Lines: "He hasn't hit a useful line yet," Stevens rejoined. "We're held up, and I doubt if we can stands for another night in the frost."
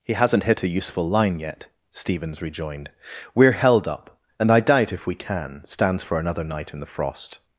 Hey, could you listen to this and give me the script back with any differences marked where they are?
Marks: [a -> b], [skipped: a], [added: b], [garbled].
"He hasn't hit a useful line yet," Stevens rejoined. "We're held up, and I doubt if we can stands for another night in the frost."